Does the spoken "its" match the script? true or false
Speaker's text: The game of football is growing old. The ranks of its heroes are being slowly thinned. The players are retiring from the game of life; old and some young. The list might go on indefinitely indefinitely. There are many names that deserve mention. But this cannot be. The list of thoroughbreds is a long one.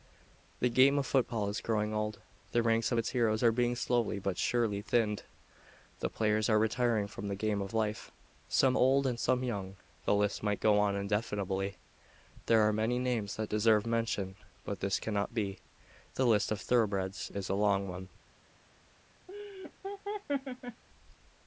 true